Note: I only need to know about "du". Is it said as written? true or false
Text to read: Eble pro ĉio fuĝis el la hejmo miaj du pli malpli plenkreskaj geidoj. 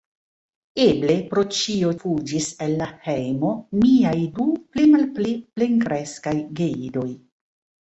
true